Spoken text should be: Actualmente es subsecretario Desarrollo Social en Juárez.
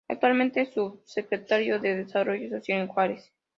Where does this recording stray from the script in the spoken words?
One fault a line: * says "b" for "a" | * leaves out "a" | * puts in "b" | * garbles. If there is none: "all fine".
* puts in "de"